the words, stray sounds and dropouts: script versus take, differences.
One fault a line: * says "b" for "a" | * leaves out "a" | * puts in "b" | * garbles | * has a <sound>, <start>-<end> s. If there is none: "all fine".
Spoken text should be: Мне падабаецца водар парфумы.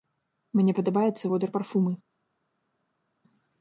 all fine